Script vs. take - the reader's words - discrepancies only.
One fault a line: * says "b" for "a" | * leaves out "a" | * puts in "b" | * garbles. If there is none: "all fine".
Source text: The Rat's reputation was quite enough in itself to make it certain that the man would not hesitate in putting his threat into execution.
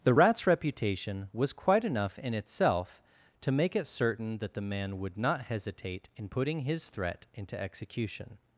all fine